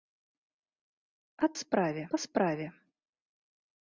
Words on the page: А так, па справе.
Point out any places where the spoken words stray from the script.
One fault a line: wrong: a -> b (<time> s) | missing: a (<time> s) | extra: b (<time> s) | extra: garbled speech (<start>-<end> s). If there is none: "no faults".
wrong: так -> справе (1.6 s)